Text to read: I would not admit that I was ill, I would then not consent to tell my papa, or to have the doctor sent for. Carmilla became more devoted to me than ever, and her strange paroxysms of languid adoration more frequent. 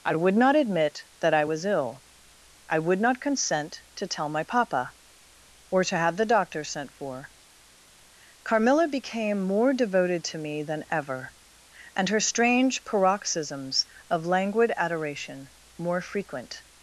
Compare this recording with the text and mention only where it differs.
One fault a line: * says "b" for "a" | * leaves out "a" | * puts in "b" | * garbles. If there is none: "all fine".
* leaves out "then"